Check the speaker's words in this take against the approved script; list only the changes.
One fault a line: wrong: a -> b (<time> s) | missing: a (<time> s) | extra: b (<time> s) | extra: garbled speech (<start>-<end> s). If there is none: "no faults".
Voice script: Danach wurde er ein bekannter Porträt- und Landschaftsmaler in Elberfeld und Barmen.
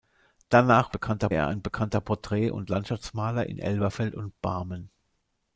wrong: wurde -> bekannter (0.9 s)